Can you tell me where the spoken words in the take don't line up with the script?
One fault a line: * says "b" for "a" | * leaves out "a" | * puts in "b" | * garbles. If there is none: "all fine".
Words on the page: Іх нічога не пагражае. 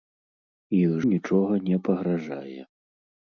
all fine